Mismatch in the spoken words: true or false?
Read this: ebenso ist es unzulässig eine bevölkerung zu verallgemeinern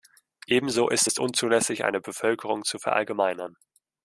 false